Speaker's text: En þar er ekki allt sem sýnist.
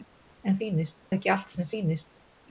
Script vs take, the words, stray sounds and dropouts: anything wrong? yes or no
yes